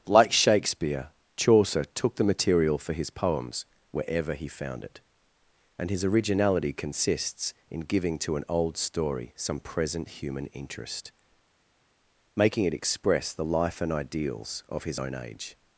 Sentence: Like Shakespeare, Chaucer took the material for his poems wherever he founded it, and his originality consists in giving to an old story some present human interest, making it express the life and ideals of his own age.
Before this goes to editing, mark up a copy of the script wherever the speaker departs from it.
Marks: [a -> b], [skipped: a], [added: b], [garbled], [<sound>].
Like Shakespeare, Chaucer took the material for his poems wherever he [founded -> found] it, and his originality consists in giving to an old story some present human interest, making it express the life and ideals of his own age.